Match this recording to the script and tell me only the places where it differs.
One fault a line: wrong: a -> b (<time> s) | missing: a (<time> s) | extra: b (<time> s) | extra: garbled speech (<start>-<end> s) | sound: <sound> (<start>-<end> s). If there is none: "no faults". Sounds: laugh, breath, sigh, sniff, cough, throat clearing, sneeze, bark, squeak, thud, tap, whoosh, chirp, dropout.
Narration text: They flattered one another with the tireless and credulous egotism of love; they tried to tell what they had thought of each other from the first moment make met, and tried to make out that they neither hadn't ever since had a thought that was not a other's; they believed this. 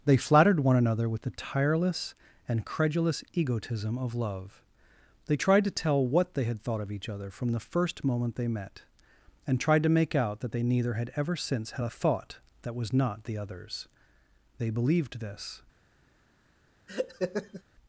wrong: make -> they (8.4 s)
wrong: hadn't -> had (10.9 s)
wrong: a -> the (13.2 s)
sound: laugh (16.9-17.6 s)